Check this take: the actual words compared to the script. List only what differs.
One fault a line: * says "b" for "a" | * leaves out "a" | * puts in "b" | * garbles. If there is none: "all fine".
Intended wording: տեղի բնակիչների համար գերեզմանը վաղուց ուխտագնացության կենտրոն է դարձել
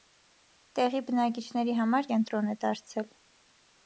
* leaves out "գերեզմանը վաղուց ուխտագնացության"